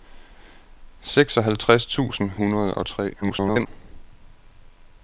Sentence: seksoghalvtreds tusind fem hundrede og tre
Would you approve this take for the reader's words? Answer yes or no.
no